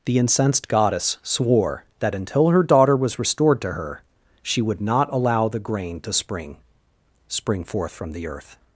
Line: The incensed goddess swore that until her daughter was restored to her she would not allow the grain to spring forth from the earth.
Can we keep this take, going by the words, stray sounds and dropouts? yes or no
no